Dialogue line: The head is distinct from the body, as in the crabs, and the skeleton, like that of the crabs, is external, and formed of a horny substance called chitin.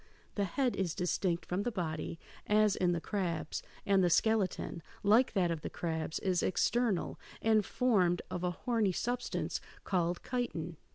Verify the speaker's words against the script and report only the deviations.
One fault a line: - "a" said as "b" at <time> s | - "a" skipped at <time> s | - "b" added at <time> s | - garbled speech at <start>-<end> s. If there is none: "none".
none